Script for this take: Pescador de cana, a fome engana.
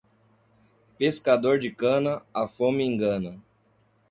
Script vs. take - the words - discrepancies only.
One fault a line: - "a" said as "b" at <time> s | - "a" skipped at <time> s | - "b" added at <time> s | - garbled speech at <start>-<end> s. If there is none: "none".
none